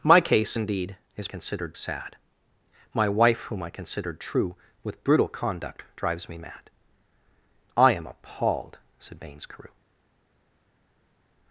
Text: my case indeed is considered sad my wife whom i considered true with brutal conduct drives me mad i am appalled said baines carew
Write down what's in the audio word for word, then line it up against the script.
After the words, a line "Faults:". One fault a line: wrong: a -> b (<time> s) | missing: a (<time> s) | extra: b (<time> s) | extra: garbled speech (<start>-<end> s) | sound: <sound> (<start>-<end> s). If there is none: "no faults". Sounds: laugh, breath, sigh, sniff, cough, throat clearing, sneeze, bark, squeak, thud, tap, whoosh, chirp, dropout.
my case indeed is considered sad my wife whom i considered true with brutal conduct drives me mad i am appalled said baines carew
Faults:
no faults